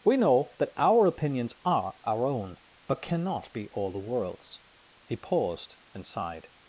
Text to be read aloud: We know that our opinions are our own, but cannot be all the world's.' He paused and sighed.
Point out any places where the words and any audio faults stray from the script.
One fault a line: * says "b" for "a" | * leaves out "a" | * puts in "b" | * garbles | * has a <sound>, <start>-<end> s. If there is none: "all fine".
all fine